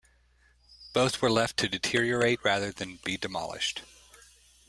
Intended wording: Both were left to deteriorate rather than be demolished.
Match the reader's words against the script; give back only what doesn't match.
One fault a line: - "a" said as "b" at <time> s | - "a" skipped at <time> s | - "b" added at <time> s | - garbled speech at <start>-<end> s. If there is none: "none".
none